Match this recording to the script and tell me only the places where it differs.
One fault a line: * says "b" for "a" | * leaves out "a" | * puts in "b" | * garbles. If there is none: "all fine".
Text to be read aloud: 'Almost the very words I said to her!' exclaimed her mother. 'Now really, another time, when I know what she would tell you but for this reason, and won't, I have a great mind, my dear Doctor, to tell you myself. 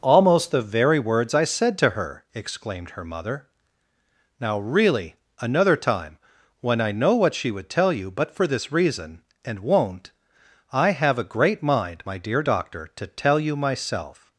all fine